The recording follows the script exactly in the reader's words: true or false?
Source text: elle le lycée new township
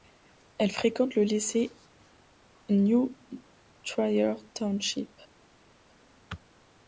false